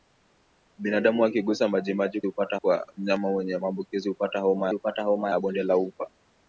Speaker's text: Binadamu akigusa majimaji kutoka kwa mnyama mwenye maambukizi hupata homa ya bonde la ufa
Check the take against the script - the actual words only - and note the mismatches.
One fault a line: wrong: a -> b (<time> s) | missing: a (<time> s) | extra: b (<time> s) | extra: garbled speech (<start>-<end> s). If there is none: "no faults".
wrong: kutoka -> hupata (2.3 s)
extra: hupata homa (4.7 s)